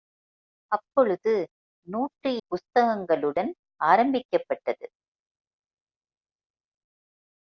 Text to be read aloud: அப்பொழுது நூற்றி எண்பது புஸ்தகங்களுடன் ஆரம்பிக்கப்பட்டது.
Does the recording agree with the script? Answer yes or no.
no